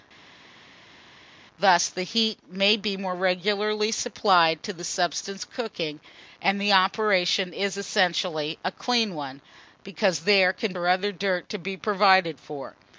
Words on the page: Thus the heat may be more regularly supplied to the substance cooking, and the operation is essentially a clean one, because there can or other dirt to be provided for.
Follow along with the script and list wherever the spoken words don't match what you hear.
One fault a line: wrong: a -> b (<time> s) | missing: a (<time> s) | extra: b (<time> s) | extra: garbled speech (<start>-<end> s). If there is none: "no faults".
no faults